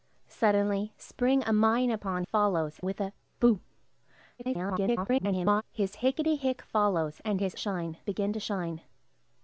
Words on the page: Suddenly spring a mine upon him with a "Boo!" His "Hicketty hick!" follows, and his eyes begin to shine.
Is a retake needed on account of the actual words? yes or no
yes